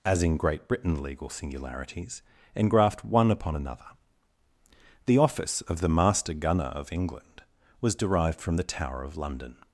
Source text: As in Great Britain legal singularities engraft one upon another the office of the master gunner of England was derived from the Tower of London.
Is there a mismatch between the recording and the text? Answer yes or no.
no